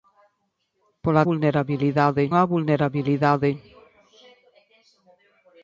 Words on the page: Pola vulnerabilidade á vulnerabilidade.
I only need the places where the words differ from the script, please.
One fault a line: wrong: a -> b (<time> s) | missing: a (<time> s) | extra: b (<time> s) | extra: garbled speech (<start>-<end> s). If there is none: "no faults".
no faults